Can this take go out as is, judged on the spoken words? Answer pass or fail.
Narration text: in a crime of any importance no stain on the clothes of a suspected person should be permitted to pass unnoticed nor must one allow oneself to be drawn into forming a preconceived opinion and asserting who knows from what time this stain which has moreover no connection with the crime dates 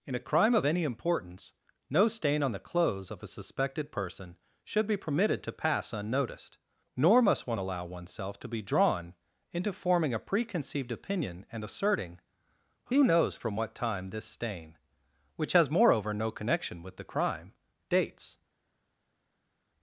pass